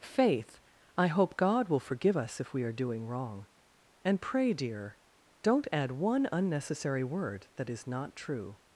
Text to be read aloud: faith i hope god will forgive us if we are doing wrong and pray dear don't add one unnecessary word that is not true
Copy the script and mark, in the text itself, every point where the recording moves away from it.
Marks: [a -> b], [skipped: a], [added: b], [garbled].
faith i hope god will forgive us if we are doing wrong and pray dear don't add one unnecessary word that is not true